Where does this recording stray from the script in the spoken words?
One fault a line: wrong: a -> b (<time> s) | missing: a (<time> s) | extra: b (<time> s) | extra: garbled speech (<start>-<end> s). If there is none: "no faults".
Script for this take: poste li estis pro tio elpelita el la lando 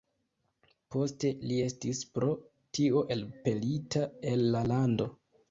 no faults